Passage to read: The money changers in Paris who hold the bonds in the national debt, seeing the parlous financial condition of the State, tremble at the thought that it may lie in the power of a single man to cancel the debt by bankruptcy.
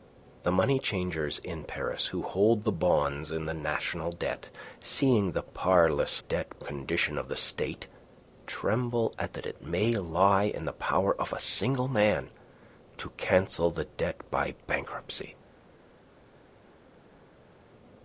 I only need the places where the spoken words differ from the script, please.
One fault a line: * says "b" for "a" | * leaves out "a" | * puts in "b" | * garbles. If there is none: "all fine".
* says "debt" for "financial"
* leaves out "the thought"